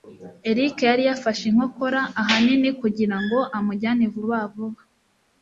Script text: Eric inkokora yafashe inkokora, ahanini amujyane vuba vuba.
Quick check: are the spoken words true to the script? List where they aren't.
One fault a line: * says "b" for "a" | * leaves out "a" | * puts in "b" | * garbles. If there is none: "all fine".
* says "yari" for "inkokora"
* puts in "kugirango"